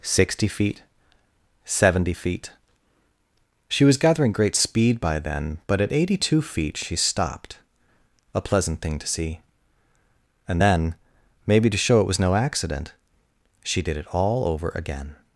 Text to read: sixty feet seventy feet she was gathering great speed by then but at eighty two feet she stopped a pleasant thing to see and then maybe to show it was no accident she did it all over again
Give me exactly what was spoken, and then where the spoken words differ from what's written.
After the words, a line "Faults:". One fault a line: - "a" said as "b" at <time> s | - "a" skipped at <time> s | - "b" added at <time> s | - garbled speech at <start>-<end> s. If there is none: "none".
sixty feet seventy feet she was gathering great speed by then but at eighty two feet she stopped a pleasant thing to see and then maybe to show it was no accident she did it all over again
Faults:
none